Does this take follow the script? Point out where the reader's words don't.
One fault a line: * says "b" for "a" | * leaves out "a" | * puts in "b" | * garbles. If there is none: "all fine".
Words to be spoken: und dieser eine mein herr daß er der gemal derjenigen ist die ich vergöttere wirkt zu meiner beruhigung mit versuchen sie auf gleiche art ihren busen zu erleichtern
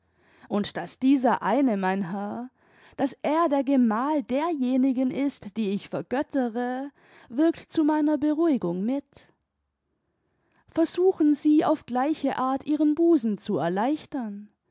* puts in "daß"